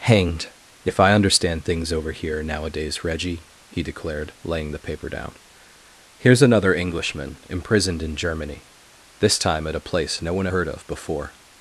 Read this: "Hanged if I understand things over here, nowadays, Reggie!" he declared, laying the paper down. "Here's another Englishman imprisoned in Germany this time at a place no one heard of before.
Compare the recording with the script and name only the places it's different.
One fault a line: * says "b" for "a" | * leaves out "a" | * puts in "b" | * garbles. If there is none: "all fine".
all fine